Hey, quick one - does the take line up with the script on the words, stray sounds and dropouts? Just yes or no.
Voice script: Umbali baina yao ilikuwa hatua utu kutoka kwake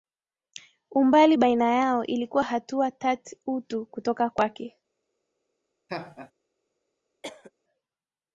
no